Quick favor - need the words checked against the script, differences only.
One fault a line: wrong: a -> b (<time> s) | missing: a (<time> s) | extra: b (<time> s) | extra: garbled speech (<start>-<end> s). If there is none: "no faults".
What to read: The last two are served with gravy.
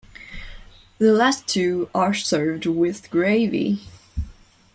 no faults